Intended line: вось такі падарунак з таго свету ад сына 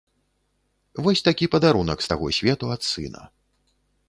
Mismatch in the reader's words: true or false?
false